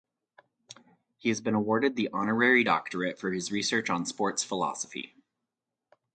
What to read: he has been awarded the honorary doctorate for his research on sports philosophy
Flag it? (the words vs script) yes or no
no